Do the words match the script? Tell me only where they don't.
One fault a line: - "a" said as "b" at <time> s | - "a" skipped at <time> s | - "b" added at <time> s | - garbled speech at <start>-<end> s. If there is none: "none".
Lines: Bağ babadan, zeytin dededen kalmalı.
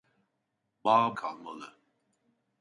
- "babadan zeytin dededen" skipped at 1.1 s